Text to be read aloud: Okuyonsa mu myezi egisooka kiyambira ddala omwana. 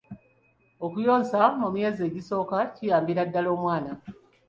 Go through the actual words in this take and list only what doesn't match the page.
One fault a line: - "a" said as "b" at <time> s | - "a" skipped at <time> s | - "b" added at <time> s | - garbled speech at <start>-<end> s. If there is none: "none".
none